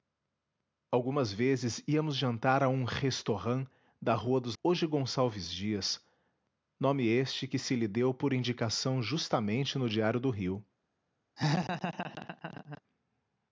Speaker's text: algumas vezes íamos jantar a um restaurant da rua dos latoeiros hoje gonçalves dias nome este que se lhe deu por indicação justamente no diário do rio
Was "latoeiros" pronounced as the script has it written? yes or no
no